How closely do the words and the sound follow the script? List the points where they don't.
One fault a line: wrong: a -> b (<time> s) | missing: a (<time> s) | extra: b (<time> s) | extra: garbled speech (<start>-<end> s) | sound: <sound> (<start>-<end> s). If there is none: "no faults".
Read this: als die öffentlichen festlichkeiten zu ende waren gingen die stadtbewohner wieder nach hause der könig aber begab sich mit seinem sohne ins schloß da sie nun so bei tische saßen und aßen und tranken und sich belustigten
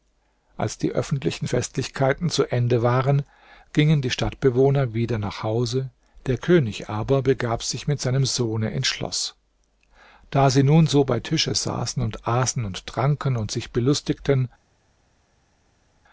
no faults